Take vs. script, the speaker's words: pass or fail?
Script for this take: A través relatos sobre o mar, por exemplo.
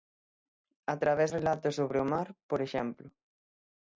pass